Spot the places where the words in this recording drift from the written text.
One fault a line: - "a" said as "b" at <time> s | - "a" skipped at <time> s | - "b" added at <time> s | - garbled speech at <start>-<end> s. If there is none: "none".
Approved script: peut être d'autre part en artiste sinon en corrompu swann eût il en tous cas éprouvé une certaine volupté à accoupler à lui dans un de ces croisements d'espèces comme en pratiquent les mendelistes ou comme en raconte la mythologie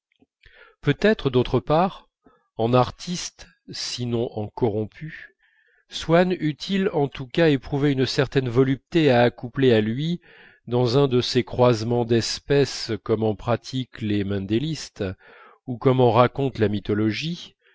none